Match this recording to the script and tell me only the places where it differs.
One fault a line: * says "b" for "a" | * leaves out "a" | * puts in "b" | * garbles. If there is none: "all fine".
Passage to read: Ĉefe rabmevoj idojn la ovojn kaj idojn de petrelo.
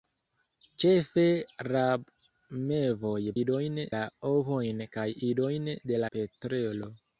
all fine